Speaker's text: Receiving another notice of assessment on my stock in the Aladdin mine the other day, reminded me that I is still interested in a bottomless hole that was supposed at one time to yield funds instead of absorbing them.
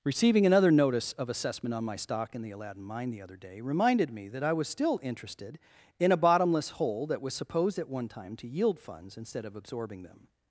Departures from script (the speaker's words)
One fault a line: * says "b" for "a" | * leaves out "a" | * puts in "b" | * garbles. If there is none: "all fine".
* says "was" for "is"